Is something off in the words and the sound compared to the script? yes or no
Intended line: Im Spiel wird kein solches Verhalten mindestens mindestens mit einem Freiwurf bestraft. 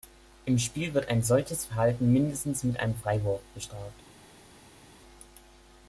yes